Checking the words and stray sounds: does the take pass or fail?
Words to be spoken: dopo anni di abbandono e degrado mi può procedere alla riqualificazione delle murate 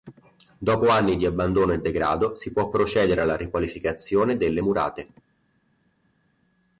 fail